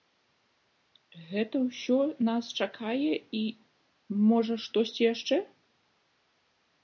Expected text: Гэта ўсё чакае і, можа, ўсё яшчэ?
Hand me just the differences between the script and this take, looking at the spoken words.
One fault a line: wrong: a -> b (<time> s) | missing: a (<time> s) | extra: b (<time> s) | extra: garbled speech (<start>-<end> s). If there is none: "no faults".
extra: нас (2.3 s)
wrong: ўсё -> штосьці (4.7 s)